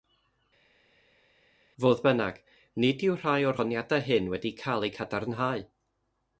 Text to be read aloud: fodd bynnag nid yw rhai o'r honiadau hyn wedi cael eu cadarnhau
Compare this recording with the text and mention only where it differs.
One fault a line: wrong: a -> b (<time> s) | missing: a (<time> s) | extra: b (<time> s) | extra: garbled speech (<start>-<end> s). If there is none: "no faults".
no faults